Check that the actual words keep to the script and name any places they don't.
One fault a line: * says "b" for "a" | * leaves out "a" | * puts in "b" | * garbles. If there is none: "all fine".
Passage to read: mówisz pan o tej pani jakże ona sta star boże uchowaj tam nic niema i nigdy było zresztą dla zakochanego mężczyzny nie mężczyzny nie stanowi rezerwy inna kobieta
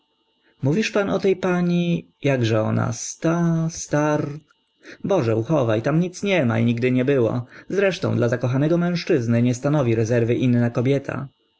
* puts in "nie"
* leaves out "mężczyzny nie"